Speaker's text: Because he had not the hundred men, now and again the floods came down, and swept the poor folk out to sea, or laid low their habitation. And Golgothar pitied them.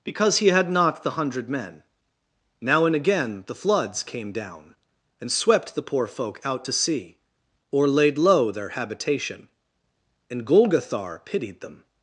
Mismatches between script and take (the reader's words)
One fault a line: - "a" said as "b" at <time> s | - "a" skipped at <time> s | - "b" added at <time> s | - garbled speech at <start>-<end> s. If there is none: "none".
none